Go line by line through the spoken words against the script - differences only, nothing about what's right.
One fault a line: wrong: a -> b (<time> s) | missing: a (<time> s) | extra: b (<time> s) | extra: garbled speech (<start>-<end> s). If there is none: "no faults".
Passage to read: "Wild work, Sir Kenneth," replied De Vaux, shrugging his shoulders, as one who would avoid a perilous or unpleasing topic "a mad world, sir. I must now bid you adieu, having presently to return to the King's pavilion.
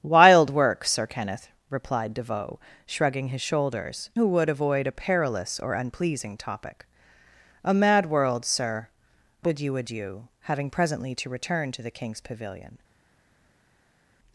missing: as one (4.1 s)
missing: I must now (8.9 s)